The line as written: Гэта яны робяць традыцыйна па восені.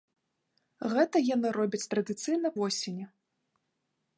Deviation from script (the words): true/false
true